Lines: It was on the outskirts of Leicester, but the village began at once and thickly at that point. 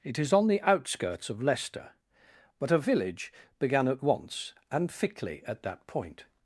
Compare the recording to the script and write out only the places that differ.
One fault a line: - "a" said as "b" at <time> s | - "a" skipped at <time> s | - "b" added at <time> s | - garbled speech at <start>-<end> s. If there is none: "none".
- "was" said as "is" at 0.2 s
- "the" said as "a" at 2.7 s